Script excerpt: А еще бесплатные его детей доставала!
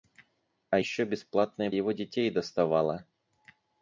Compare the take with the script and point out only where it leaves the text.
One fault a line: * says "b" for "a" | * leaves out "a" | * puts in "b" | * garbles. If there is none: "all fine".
all fine